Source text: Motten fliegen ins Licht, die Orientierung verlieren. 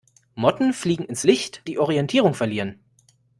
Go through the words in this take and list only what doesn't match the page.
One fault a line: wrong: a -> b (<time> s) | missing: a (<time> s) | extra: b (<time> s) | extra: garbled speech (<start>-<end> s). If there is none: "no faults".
no faults